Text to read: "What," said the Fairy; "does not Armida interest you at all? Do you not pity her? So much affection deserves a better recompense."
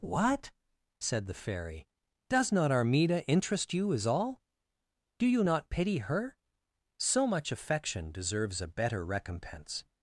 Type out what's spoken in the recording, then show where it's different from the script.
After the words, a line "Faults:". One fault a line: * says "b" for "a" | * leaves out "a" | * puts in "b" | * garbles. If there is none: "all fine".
"What," said the Fairy; "does not Armida interest you as all? Do you not pity her? So much affection deserves a better recompense."
Faults:
* says "as" for "at"